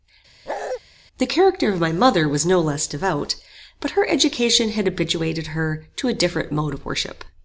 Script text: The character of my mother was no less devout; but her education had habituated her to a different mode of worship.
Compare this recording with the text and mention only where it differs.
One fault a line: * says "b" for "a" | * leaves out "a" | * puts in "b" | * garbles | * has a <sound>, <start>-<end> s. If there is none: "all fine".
* has a bark, 0.5-0.8 s